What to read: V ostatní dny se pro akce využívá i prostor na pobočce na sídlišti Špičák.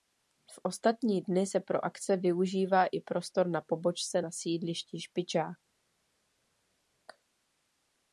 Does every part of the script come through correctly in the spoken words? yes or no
yes